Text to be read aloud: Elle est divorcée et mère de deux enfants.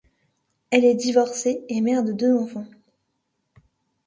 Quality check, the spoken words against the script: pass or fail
pass